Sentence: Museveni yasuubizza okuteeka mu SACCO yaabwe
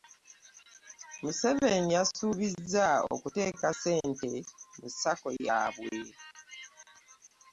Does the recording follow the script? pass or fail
fail